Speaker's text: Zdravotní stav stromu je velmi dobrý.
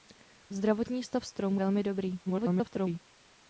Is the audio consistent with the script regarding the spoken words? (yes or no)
no